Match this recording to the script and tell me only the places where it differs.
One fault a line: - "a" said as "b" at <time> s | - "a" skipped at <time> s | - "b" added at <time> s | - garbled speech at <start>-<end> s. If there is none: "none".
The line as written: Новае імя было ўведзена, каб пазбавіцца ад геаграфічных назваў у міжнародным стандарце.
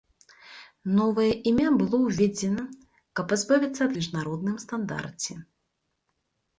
- "геаграфічных назваў у" skipped at 3.9 s